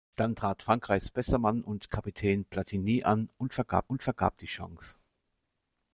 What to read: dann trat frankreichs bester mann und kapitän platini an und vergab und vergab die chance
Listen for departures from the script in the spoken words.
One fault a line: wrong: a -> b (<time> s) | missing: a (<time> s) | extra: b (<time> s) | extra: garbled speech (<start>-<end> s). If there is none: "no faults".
no faults